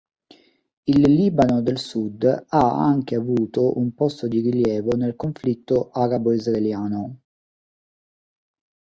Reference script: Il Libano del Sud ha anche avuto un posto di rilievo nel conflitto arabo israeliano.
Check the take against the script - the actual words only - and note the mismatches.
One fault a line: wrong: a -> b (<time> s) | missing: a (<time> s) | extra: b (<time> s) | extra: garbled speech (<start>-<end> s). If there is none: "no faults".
no faults